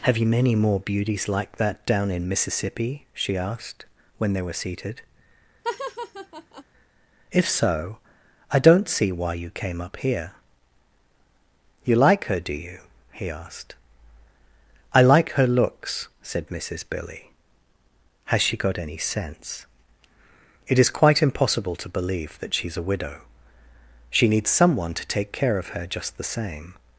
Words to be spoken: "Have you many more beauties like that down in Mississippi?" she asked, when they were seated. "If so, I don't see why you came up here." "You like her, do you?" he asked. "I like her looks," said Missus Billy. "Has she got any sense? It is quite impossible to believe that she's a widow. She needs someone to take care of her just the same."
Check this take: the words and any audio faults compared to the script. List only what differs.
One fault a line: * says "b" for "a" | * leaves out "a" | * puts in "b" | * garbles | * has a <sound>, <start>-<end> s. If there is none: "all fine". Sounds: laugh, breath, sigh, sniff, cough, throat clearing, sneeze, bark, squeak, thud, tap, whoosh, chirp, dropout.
* has a laugh, 5.6-6.6 s